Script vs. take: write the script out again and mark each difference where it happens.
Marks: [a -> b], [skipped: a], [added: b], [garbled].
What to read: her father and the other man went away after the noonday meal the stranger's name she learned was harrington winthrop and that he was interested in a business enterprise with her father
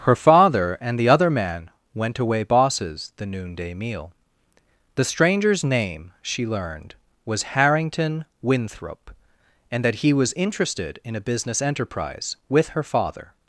her father and the other man went away [after -> bosses] the noonday meal the stranger's name she learned was harrington winthrop and that he was interested in a business enterprise with her father